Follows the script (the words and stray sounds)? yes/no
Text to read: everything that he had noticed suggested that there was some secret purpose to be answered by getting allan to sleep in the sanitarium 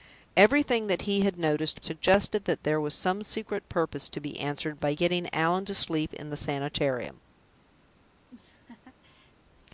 no